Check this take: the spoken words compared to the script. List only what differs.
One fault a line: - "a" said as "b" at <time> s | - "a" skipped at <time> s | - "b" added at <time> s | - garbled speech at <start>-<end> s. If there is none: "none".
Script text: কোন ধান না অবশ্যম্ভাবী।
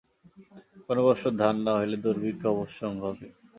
- "বৎসর" added at 1.1 s
- "হইলে দুর্ভিক্ষ" added at 1.8 s